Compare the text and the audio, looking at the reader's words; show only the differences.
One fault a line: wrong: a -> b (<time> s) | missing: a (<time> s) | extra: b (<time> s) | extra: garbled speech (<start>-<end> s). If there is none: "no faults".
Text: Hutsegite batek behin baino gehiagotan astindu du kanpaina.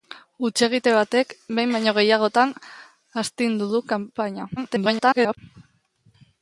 extra: garbled speech (4.6-5.4 s)